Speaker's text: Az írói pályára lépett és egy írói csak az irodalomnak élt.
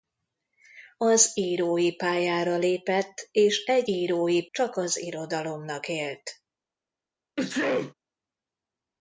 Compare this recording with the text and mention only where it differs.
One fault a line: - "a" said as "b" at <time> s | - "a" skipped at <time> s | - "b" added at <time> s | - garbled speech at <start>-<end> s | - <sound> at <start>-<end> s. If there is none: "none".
- sneeze at 7.4-7.9 s